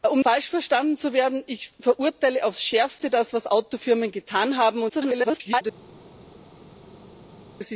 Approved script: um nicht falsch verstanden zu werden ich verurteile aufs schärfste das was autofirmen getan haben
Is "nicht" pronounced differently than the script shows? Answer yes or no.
yes